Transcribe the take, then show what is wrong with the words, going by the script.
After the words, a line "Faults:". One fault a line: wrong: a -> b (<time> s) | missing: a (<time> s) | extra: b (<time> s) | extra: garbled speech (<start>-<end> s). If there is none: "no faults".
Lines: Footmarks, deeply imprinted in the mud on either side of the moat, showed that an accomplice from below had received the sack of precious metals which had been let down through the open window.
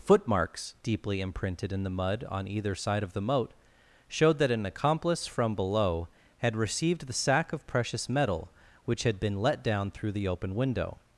Footmarks, deeply imprinted in the mud on either side of the moat, showed that an accomplice from below had received the sack of precious metal which had been let down through the open window.
Faults:
wrong: metals -> metal (8.1 s)